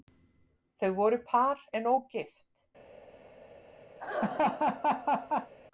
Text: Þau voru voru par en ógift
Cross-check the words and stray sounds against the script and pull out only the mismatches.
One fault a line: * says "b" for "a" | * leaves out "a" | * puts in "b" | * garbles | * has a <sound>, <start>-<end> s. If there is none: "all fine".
* leaves out "voru"
* has a laugh, 4.0-5.5 s